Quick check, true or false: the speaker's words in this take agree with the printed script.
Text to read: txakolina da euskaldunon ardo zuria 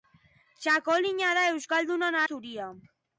false